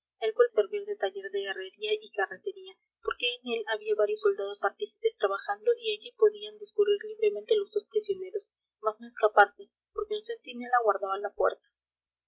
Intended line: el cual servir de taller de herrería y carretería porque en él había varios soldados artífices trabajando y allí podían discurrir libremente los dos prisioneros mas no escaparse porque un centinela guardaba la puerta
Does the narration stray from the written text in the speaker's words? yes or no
no